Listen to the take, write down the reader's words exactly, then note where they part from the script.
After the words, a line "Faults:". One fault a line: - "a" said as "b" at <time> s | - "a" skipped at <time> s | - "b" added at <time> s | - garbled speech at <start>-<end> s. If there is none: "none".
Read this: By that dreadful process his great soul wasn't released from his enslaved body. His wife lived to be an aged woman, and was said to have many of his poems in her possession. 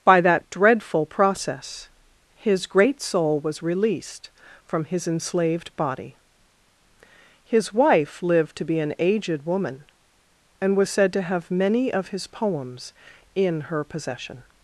By that dreadful process his great soul was released from his enslaved body. His wife lived to be an aged woman, and was said to have many of his poems in her possession.
Faults:
- "wasn't" said as "was" at 3.4 s